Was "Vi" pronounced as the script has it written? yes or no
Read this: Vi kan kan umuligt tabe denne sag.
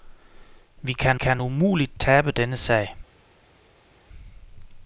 yes